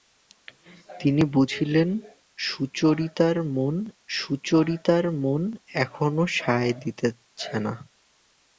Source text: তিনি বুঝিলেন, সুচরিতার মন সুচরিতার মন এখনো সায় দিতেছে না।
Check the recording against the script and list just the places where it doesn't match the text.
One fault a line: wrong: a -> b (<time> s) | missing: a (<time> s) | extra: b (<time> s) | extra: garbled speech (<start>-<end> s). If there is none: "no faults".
no faults